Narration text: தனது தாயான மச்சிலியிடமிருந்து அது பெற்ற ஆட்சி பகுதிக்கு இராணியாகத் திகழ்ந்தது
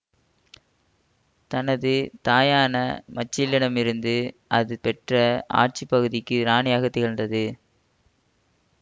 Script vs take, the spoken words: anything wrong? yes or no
no